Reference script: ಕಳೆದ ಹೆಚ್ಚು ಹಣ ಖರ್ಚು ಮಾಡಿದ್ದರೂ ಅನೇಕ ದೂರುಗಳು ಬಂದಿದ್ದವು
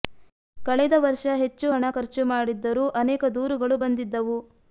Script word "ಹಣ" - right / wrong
right